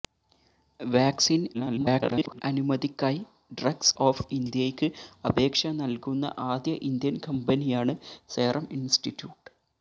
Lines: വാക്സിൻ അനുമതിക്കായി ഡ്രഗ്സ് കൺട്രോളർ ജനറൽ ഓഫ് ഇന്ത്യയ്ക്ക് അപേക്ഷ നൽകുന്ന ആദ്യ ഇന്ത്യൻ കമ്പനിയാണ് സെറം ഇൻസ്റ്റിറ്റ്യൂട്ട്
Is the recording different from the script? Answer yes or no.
yes